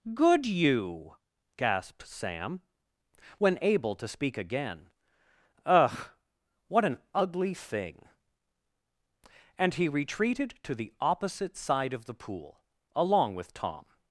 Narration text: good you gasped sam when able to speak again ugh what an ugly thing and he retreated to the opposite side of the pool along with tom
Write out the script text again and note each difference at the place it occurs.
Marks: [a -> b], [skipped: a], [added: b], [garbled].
good you gasped sam when able to speak again ugh what an ugly thing and he retreated to the opposite side of the pool along with tom